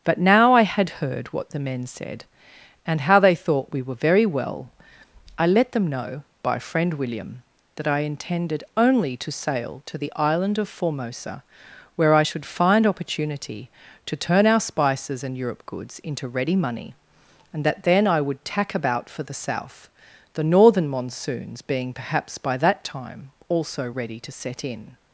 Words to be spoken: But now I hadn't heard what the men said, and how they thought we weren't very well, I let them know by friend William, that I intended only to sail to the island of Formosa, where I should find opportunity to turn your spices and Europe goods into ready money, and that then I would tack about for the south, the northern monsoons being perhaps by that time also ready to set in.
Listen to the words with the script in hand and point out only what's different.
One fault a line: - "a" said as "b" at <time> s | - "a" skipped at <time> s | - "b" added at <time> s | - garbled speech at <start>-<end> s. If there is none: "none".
- "hadn't" said as "had" at 0.6 s
- "weren't" said as "were" at 3.8 s
- "your" said as "our" at 14.5 s